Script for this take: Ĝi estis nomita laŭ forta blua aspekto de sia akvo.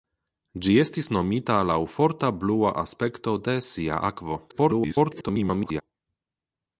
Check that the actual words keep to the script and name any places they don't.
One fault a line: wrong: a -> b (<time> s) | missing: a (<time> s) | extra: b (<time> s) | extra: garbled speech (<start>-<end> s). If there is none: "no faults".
extra: garbled speech (4.5-5.8 s)